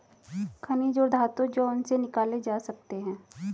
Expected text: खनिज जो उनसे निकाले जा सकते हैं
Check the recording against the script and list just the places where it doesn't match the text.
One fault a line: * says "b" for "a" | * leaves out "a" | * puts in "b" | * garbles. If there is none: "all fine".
* puts in "और धातु"